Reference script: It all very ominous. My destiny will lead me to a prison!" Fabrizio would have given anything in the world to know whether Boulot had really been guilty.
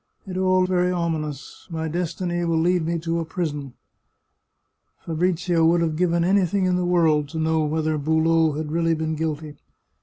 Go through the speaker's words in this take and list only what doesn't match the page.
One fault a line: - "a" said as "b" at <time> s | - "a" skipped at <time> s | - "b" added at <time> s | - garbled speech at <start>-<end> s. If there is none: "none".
none